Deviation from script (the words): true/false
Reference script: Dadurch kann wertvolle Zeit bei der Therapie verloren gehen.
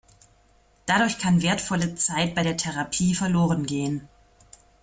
false